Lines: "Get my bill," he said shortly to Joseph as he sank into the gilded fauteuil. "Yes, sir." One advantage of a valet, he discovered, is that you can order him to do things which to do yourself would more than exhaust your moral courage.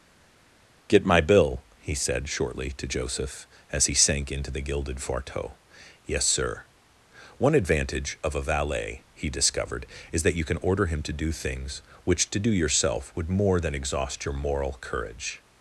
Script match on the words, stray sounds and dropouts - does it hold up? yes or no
yes